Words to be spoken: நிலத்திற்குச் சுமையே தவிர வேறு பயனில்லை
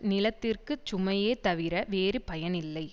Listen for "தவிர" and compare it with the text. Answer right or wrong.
right